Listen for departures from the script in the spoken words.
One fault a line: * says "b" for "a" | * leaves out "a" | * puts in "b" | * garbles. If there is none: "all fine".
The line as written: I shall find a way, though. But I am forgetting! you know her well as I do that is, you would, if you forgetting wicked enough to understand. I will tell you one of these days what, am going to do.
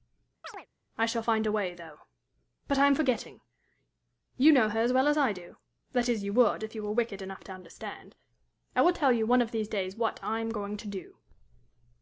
* puts in "as"
* says "were" for "forgetting"
* puts in "I"